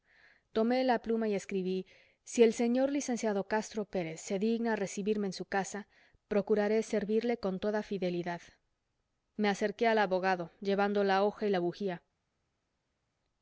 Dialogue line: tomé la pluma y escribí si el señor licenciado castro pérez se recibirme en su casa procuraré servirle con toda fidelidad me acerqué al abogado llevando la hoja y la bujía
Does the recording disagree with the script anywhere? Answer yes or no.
yes